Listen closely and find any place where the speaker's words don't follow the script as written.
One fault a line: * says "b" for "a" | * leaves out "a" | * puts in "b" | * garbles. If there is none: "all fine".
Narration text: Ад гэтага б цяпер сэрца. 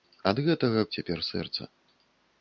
all fine